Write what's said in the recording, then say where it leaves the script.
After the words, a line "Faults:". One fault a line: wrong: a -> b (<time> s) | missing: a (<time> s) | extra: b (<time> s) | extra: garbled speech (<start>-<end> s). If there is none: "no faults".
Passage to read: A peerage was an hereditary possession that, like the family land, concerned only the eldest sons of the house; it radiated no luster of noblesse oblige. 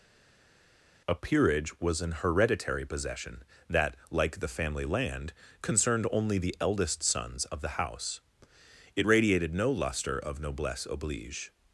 A peerage was an hereditary possession that, like the family land, concerned only the eldest sons of the house; it radiated no luster of noblesse oblige.
Faults:
no faults